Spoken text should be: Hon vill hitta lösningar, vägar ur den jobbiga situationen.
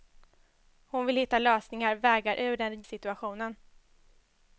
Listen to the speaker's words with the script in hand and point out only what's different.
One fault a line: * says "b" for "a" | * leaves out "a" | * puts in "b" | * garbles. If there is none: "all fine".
* leaves out "jobbiga"